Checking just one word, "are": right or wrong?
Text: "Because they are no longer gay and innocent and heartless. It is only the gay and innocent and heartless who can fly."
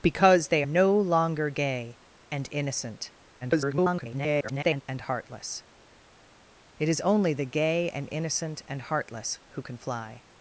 wrong